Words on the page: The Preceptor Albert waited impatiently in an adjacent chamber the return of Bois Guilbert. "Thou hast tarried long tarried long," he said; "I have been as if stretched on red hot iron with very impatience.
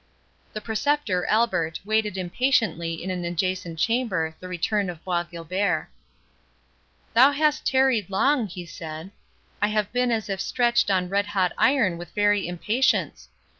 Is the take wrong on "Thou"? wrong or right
right